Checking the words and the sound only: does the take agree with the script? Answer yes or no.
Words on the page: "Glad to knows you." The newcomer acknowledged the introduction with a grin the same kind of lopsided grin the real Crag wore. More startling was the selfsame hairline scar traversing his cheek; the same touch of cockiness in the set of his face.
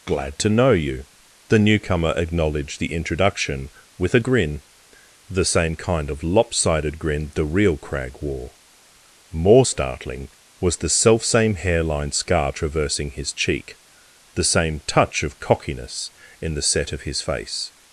no